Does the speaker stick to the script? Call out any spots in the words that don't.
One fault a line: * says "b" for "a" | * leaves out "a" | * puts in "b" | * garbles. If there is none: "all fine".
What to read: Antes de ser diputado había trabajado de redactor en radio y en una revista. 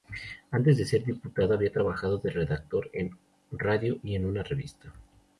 all fine